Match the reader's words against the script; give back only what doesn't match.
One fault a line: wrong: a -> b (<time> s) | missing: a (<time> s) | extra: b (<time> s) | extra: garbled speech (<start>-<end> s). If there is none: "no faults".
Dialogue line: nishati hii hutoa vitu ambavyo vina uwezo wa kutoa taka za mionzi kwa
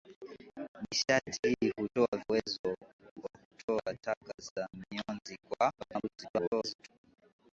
missing: vitu ambavyo vina (2.1 s)
extra: garbled speech (5.8-6.9 s)